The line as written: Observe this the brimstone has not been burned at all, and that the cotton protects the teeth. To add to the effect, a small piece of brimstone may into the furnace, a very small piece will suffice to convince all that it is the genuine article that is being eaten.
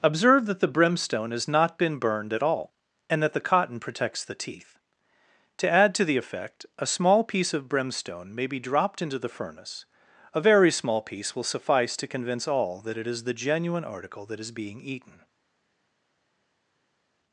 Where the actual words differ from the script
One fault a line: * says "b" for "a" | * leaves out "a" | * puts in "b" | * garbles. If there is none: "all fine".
* says "that" for "this"
* puts in "be dropped"